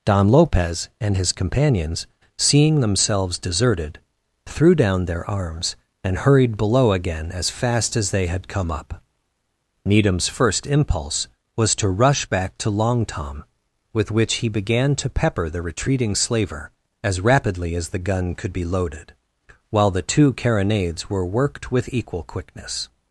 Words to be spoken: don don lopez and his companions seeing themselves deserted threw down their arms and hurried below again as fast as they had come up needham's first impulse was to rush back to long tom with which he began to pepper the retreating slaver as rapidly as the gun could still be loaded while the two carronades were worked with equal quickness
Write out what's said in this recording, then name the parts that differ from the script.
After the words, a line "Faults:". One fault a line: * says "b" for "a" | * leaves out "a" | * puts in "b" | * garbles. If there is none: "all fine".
don lopez and his companions seeing themselves deserted threw down their arms and hurried below again as fast as they had come up needham's first impulse was to rush back to long tom with which he began to pepper the retreating slaver as rapidly as the gun could be loaded while the two carronades were worked with equal quickness
Faults:
* leaves out "don"
* leaves out "still"